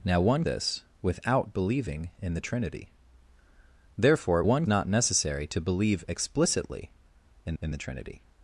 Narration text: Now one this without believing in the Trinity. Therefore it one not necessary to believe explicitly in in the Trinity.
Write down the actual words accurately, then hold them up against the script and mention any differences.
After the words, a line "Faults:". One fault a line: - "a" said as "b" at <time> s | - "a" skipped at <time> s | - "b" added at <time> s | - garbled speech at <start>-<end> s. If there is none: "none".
Now one this without believing in the Trinity. Therefore it one not necessary to believe explicitly in in the Trinity.
Faults:
none